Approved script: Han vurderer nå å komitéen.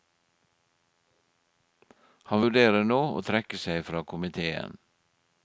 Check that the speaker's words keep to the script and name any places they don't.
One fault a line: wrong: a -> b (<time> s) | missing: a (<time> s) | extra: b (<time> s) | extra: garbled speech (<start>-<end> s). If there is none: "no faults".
extra: trekke seg fra (3.2 s)